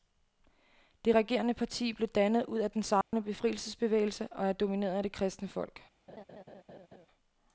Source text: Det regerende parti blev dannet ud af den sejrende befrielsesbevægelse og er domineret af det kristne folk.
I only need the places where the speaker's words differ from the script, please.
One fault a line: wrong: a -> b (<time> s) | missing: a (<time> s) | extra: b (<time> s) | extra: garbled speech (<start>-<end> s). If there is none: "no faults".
no faults